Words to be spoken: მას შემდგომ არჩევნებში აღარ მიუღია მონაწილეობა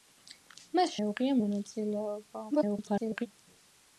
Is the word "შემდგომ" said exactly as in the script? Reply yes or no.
no